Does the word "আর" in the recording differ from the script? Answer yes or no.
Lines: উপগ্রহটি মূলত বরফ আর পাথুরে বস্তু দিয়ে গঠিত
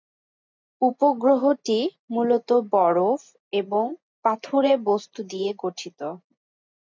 yes